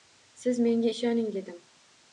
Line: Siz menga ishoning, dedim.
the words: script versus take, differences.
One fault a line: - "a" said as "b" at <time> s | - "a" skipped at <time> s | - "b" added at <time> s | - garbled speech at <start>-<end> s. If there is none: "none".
none